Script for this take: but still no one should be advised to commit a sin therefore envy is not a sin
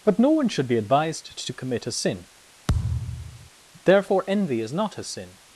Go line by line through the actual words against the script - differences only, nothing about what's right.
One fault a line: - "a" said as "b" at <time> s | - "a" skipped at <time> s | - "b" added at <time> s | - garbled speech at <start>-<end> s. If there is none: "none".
- "still" skipped at 0.2 s